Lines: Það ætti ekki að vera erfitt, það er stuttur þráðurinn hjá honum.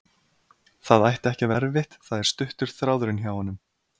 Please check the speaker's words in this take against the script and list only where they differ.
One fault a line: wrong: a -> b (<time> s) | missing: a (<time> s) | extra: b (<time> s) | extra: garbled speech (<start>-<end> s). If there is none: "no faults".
missing: vera (1.5 s)